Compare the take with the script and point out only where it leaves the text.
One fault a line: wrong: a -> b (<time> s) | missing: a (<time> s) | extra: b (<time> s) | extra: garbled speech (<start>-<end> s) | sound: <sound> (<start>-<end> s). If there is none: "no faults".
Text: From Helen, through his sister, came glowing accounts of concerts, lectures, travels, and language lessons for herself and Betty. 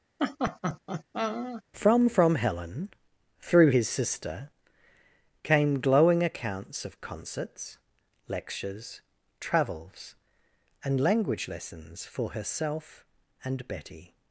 sound: laugh (0.2-1.6 s)
extra: from (2.1 s)